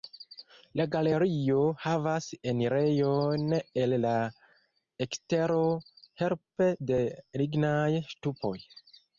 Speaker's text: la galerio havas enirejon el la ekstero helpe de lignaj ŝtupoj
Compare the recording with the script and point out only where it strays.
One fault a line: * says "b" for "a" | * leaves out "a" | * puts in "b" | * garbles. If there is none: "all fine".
all fine